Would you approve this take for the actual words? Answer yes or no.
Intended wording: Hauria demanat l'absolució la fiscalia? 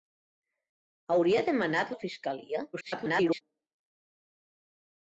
no